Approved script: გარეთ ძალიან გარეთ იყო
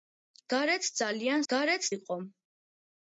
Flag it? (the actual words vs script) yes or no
no